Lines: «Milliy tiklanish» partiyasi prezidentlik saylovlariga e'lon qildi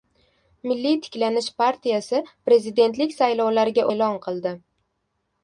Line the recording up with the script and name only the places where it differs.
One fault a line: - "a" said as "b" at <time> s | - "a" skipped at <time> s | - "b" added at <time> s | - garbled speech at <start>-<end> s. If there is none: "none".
none